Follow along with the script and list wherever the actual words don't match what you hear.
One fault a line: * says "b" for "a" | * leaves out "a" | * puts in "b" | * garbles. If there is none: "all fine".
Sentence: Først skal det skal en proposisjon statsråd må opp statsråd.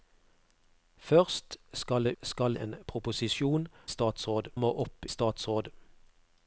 all fine